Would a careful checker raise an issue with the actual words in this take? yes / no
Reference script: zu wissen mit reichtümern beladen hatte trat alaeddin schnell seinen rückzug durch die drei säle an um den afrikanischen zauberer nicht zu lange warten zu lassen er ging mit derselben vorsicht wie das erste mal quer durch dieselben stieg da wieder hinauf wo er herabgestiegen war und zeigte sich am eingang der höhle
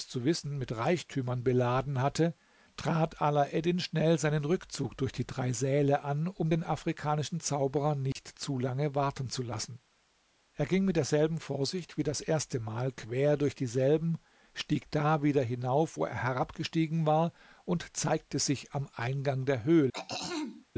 no